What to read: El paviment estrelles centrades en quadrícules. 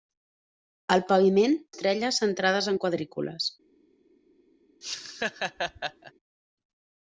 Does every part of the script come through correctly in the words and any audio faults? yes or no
no